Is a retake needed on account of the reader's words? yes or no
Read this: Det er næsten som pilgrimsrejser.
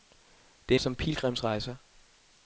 yes